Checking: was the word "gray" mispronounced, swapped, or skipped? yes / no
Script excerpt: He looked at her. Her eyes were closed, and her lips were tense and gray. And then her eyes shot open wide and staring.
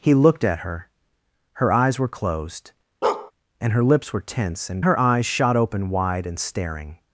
yes